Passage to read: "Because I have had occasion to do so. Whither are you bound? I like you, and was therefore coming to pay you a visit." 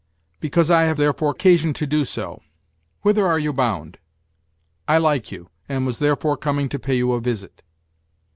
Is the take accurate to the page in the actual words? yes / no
no